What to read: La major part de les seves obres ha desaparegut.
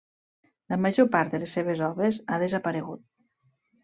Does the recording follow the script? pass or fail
pass